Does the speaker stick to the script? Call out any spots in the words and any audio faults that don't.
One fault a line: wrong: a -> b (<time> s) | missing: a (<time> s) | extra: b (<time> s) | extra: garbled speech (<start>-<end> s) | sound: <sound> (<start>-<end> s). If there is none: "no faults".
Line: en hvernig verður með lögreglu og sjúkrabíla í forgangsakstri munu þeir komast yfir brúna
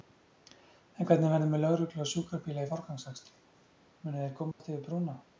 sound: dropout (4.5-4.6 s)